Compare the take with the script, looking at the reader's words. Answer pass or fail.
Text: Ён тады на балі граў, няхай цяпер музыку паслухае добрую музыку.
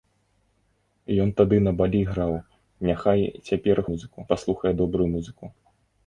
pass